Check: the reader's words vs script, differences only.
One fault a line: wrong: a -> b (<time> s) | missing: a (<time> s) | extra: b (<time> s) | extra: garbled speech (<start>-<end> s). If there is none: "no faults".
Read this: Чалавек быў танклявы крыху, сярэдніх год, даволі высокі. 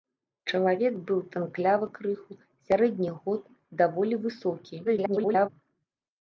extra: garbled speech (4.8-5.5 s)